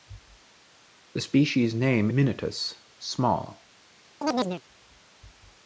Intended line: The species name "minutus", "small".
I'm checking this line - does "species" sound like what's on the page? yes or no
yes